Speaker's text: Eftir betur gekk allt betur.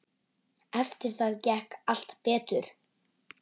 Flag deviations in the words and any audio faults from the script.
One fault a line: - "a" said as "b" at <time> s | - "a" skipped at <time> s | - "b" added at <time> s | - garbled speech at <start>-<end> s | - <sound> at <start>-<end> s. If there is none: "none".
- "betur" said as "það" at 1.2 s